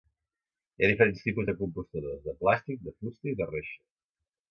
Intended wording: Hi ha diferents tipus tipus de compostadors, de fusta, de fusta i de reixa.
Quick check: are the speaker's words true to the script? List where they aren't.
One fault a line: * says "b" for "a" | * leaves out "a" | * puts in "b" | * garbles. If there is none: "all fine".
* leaves out "tipus"
* says "plàstic" for "fusta"